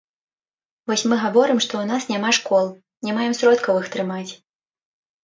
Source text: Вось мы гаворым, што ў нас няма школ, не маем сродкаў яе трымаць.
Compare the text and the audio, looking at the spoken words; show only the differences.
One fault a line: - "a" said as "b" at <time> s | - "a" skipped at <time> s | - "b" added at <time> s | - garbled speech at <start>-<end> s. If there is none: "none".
- "яе" said as "іх" at 3.8 s